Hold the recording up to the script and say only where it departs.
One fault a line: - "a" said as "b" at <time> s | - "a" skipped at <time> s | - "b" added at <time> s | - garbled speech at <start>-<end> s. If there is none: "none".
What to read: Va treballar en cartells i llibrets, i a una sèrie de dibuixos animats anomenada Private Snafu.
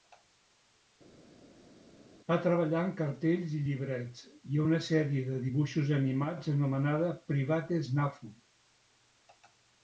none